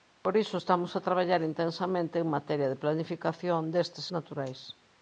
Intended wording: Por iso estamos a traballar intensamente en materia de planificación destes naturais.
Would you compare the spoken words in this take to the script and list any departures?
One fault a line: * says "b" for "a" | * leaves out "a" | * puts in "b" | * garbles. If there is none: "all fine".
all fine